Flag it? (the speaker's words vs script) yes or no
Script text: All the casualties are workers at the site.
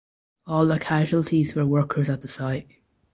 yes